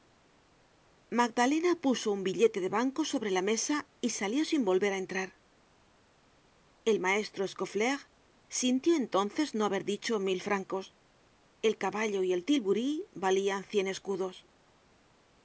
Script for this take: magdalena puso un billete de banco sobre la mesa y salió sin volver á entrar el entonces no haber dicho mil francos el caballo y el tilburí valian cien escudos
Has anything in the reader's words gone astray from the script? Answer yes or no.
yes